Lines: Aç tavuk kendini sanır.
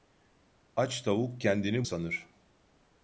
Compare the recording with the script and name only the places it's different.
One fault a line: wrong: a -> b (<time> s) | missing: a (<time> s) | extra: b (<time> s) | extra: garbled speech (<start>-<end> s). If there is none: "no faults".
no faults